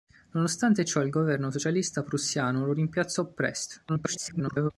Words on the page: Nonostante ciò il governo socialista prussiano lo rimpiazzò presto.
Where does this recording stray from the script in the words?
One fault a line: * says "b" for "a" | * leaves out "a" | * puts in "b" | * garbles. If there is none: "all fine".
* garbles